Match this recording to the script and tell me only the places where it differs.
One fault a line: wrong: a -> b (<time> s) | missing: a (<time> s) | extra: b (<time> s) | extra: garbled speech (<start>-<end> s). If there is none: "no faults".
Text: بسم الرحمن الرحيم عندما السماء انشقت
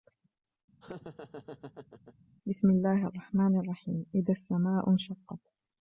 extra: الله (2.7 s)
wrong: عندما -> إذا (4.1 s)